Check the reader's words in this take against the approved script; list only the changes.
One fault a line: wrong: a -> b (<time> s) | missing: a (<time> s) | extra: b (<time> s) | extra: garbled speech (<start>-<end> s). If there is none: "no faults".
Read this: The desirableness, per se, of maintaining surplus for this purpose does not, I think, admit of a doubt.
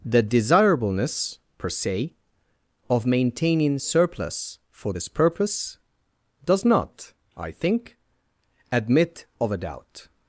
no faults